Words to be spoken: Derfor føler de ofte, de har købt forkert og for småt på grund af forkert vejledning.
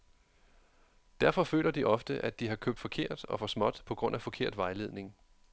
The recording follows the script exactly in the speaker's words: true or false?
false